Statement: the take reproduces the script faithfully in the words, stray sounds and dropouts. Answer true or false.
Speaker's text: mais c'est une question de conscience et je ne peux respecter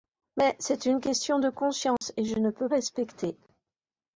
false